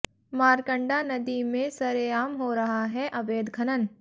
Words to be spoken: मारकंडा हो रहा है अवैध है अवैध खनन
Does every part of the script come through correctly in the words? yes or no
no